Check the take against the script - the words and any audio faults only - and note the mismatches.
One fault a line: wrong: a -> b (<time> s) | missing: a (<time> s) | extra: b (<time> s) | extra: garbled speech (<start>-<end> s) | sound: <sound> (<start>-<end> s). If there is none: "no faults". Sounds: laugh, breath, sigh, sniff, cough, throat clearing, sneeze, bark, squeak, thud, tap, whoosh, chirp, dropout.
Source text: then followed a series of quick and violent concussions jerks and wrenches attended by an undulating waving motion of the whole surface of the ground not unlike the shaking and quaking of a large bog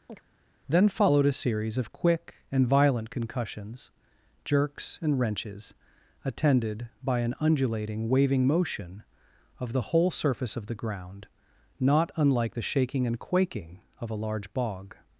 sound: chirp (0.1-0.2 s)